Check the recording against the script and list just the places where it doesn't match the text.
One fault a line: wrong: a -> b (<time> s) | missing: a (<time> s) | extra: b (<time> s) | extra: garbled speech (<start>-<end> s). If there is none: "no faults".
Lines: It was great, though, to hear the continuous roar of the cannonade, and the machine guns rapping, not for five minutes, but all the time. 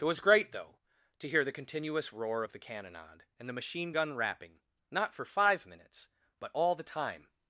wrong: guns -> gun (3.9 s)